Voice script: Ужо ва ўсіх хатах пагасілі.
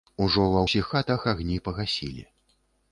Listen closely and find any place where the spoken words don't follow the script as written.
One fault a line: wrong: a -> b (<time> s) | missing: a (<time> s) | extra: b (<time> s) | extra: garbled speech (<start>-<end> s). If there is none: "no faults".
extra: агні (1.4 s)